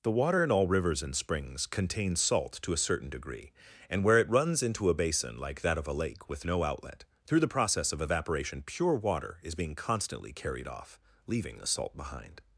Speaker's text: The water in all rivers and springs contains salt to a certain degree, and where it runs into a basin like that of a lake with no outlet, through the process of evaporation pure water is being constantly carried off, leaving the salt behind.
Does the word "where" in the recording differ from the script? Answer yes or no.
no